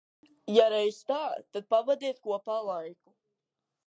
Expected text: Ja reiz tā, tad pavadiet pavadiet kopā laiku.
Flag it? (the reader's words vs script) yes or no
yes